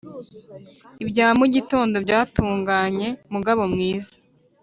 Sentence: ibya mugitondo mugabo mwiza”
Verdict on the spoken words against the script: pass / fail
fail